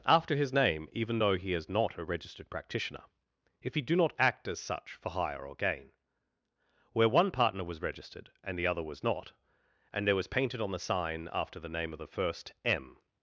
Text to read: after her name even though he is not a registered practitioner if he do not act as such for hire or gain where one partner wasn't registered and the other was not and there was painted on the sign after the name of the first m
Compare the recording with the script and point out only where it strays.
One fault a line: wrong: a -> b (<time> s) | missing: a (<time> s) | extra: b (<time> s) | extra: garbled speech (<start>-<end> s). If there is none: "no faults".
wrong: her -> his (0.3 s)
wrong: wasn't -> was (7.6 s)